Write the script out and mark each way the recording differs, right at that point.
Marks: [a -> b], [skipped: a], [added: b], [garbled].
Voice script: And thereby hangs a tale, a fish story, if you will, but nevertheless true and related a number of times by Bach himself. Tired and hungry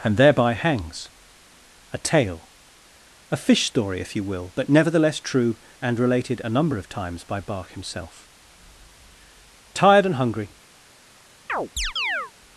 And thereby hangs a tale, a fish story, if you will, but nevertheless true and related a number of times by Bach himself. Tired and hungry